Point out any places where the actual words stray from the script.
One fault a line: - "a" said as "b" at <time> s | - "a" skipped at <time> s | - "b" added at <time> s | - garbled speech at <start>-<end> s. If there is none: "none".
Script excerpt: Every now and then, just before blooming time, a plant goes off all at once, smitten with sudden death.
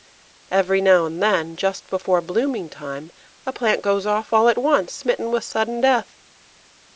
none